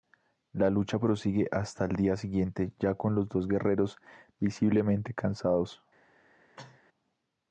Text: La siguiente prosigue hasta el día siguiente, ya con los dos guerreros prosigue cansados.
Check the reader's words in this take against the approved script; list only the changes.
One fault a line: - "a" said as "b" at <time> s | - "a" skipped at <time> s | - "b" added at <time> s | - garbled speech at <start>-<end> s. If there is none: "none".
- "siguiente" said as "lucha" at 0.7 s
- "prosigue" said as "visiblemente" at 4.4 s